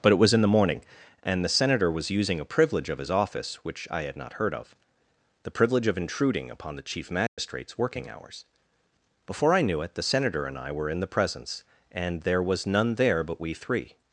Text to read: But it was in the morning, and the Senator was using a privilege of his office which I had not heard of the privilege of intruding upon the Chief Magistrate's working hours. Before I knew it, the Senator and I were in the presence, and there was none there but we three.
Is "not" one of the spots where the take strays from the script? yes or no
no